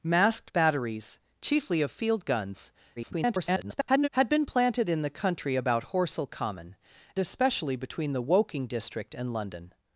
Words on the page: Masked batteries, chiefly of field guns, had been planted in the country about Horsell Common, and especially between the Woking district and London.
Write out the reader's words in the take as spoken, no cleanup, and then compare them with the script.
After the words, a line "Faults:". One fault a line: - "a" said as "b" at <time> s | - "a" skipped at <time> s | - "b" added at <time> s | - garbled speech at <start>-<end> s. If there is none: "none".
Masked batteries, chiefly of field guns, [garbled] had been planted in the country about Horsell Common, especially between the Woking district and London.
Faults:
- garbled speech at 3.0-4.1 s
- "and" skipped at 6.8 s